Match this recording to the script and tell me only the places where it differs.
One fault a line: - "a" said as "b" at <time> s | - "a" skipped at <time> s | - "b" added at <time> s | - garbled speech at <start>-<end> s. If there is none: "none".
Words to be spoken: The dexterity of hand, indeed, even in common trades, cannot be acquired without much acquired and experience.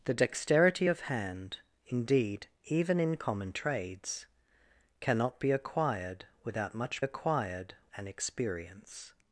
none